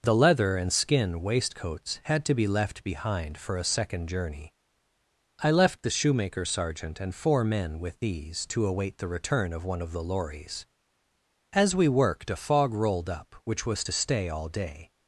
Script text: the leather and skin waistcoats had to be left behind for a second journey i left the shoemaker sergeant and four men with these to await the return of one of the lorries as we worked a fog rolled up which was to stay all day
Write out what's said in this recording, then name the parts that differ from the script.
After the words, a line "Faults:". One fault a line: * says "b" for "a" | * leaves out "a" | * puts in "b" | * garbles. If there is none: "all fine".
the leather and skin waistcoats had to be left behind for a second journey i left the shoemaker sergeant and four men with these to await the return of one of the lorries as we worked a fog rolled up which was to stay all day
Faults:
all fine